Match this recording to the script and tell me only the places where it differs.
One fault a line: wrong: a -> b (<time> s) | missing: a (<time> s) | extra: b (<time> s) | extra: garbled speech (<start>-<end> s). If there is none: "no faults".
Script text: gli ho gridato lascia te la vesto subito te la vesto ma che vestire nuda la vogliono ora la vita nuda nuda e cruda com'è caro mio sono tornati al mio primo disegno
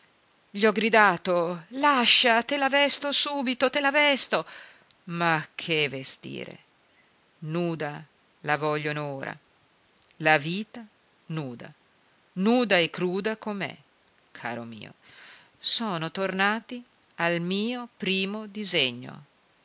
no faults